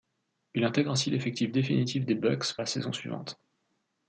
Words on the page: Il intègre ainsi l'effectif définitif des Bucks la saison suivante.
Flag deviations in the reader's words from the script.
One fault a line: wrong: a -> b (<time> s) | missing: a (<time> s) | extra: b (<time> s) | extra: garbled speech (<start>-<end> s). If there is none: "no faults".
no faults